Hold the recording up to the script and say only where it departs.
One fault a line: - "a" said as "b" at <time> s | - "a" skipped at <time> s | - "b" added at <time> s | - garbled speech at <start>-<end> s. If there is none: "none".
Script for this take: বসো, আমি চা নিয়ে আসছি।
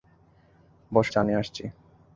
- "আমি" skipped at 1.1 s